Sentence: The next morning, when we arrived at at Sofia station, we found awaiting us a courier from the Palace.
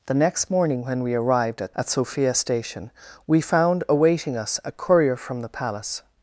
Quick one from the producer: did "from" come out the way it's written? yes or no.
yes